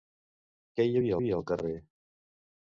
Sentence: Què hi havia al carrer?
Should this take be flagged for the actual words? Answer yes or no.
yes